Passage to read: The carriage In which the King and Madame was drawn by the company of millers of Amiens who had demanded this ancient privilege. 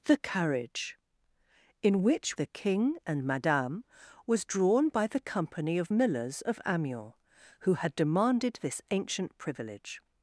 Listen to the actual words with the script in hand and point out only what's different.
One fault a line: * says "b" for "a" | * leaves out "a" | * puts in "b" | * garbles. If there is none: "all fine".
all fine